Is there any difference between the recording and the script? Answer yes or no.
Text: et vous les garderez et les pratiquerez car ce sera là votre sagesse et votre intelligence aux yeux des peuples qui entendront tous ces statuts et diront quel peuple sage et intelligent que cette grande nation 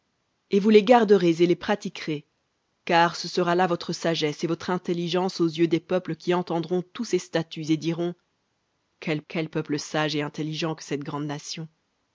yes